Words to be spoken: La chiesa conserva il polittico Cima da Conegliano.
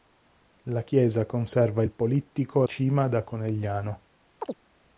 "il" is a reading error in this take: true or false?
false